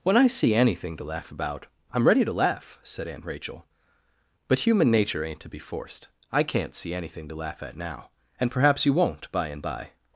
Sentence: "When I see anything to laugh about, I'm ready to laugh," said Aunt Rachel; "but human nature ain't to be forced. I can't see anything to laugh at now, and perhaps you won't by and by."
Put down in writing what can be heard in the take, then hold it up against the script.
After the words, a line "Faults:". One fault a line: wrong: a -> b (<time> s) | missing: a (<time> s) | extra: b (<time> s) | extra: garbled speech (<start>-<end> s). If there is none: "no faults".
"When I see anything to laugh about, I'm ready to laugh," said Aunt Rachel; "but human nature ain't to be forced. I can't see anything to laugh at now, and perhaps you won't by and by."
Faults:
no faults